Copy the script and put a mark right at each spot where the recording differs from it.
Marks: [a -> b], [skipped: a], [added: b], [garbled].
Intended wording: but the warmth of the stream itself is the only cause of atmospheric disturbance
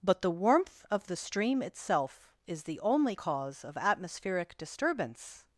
but the warmth of the stream itself is the only cause of atmospheric disturbance